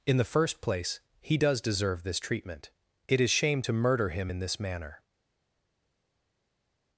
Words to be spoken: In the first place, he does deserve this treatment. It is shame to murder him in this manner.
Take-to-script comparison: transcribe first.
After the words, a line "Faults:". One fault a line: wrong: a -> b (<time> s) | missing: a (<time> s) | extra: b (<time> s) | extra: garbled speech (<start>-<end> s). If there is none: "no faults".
In the first place, he does deserve this treatment. It is shame to murder him in this manner.
Faults:
no faults